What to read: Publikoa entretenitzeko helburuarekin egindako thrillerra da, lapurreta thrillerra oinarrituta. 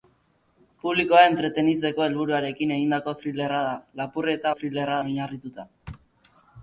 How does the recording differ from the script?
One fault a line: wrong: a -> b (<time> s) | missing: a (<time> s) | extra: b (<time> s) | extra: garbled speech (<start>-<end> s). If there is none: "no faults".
no faults